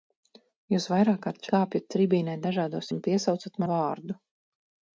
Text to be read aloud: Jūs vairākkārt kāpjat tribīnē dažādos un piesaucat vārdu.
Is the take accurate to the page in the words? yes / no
yes